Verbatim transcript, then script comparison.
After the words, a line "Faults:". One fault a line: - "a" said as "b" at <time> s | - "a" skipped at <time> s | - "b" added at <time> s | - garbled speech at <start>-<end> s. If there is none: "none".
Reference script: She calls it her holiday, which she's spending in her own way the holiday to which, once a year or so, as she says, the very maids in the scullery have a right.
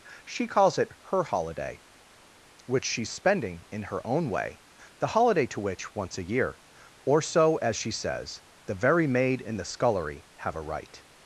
She calls it her holiday, which she's spending in her own way the holiday to which, once a year or so, as she says, the very maid in the scullery have a right.
Faults:
- "maids" said as "maid" at 9.1 s